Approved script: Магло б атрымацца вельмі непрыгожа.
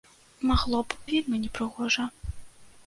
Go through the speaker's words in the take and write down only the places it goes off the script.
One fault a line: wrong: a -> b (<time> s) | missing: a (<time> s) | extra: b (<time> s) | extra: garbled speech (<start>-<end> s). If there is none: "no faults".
missing: атрымацца (1.0 s)